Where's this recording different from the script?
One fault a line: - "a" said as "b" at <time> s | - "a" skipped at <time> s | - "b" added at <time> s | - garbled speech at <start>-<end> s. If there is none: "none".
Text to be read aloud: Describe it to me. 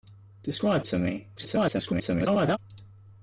- "it" skipped at 0.8 s
- garbled speech at 1.4-2.6 s